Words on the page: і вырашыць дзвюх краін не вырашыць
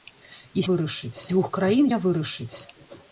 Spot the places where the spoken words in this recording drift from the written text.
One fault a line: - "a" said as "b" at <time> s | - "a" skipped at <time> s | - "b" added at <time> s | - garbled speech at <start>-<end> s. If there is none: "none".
none